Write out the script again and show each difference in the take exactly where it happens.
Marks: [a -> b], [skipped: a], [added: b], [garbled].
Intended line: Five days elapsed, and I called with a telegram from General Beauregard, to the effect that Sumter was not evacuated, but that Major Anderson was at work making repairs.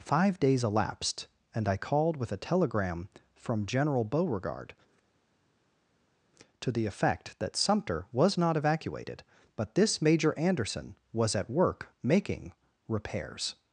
Five days elapsed, and I called with a telegram from General Beauregard, to the effect that Sumter was not evacuated, but [that -> this] Major Anderson was at work making repairs.